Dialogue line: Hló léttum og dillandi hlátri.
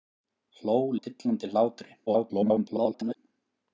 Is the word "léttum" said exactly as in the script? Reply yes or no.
no